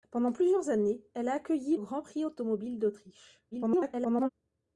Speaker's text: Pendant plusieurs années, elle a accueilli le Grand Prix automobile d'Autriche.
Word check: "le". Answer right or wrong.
wrong